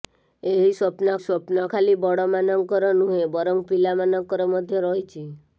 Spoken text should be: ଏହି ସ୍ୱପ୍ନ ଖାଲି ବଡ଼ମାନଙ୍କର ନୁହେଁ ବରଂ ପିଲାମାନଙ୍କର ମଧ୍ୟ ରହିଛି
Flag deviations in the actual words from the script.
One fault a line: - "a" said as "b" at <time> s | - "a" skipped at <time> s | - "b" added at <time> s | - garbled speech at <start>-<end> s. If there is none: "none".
- "ସ୍ୱପ୍ନ" added at 1.2 s